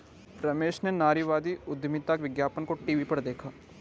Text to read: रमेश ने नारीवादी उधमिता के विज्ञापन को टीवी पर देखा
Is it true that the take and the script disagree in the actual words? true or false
true